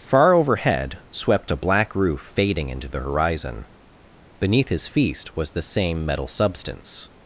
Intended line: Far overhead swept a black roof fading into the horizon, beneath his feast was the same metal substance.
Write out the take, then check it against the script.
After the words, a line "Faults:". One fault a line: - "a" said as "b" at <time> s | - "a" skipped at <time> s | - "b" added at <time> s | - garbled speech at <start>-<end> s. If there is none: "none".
Far overhead swept a black roof fading into the horizon, beneath his feast was the same metal substance.
Faults:
none